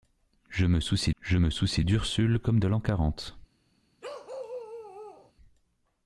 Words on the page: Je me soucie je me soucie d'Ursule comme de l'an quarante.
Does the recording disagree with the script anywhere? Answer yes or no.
no